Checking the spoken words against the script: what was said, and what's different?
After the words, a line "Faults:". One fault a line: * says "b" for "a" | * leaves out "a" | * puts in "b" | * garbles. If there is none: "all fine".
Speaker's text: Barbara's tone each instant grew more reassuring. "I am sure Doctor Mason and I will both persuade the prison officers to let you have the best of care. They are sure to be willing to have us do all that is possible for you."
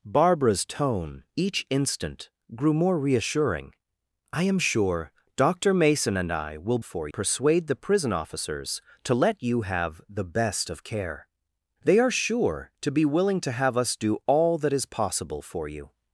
Barbara's tone each instant grew more reassuring. "I am sure Doctor Mason and I will for persuade the prison officers to let you have the best of care. They are sure to be willing to have us do all that is possible for you."
Faults:
* says "for" for "both"